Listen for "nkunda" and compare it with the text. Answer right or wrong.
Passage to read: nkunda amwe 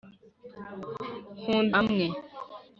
right